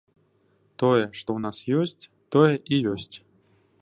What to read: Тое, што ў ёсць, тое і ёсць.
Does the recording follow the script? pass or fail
fail